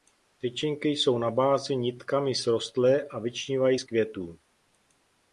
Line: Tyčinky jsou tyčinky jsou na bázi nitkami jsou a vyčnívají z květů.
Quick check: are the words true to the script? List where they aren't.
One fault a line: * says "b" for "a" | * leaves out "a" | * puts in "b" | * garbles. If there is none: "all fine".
* leaves out "tyčinky jsou"
* says "srostlé" for "jsou"